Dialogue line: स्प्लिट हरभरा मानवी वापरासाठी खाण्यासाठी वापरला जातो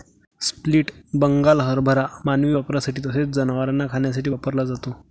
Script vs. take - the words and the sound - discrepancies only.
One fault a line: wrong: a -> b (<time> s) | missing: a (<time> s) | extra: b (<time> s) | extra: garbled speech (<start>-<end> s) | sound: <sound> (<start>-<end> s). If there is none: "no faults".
extra: बंगाल (1.1 s)
extra: तसेच जनावरांना (3.1 s)